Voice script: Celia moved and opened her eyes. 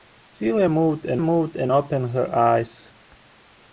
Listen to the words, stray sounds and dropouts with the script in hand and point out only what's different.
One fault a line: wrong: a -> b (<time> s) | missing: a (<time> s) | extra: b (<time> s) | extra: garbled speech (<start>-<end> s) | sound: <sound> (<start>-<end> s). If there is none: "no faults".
extra: moved and (1.2 s)